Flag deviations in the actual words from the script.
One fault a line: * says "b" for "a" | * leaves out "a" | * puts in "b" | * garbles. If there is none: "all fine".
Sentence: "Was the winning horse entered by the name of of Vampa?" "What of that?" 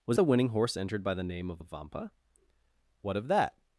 all fine